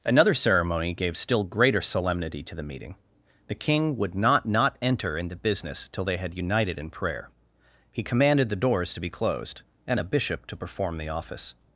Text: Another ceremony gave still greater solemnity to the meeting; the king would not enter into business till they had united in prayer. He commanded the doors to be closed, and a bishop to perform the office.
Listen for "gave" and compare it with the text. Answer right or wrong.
right